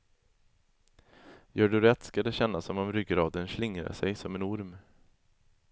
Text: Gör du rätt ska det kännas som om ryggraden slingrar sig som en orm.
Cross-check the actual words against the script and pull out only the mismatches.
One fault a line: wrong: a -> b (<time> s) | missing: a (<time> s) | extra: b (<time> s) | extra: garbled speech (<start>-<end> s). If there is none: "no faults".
no faults